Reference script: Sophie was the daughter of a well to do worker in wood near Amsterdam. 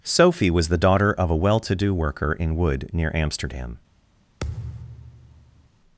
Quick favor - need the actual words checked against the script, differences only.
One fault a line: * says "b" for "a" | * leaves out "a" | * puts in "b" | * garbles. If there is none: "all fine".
all fine